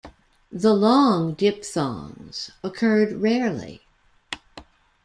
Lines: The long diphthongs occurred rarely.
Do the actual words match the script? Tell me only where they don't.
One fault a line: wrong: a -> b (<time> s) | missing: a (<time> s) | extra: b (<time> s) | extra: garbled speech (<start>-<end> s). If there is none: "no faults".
no faults